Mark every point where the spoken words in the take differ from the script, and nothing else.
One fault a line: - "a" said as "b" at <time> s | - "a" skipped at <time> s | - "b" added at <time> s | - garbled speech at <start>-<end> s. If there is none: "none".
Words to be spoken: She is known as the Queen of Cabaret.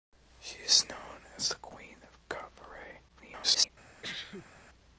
- garbled speech at 3.1-3.7 s